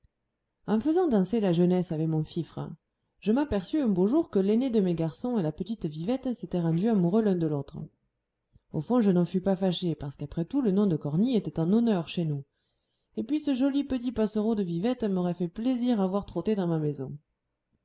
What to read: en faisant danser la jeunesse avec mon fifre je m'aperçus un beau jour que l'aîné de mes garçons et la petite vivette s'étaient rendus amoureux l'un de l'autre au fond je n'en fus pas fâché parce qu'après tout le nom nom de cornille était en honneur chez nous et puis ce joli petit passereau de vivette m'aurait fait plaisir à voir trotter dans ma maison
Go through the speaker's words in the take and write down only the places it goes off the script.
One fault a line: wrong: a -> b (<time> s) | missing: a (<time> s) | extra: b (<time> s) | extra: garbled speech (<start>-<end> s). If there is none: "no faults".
missing: nom (10.9 s)